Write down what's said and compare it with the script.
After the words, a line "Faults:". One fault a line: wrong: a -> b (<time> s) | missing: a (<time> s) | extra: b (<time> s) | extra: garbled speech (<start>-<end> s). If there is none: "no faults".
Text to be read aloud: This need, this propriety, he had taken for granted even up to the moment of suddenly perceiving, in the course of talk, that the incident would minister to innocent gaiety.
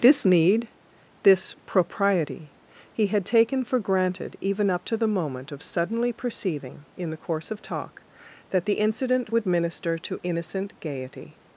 This need, this propriety, he had taken for granted even up to the moment of suddenly perceiving, in the course of talk, that the incident would minister to innocent gaiety.
Faults:
no faults